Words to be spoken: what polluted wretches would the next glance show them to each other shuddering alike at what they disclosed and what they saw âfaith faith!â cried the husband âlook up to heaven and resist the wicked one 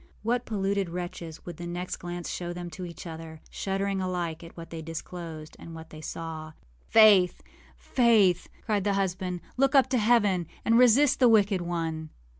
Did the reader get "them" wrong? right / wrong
right